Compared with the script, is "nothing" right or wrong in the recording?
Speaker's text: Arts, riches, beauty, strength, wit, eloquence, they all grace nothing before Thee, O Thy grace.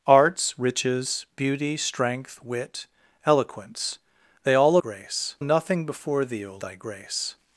right